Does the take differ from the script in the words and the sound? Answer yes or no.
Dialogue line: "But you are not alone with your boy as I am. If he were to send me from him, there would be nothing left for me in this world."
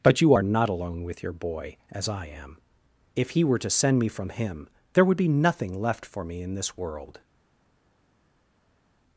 no